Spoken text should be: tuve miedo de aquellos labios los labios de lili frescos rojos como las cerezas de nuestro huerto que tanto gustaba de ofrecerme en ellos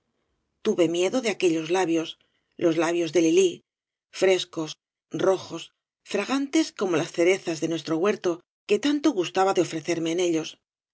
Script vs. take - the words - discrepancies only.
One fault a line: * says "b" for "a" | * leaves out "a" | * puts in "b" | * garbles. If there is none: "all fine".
* puts in "fragantes"